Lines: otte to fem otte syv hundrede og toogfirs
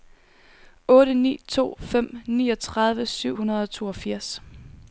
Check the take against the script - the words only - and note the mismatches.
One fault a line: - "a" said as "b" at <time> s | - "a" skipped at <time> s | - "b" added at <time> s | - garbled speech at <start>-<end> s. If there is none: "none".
- "ni" added at 1.1 s
- "otte" said as "niogtredive" at 2.3 s